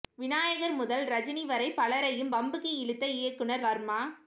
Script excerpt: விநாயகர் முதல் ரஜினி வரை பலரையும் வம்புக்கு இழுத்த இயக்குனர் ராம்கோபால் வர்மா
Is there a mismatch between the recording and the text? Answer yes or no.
yes